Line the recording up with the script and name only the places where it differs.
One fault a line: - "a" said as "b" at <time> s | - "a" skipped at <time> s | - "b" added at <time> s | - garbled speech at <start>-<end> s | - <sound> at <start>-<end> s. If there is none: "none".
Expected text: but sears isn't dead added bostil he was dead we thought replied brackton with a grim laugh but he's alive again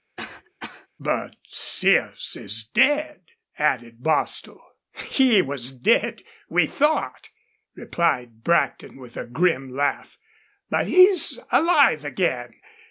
- cough at 0.2-0.9 s
- "isn't" said as "is" at 2.4 s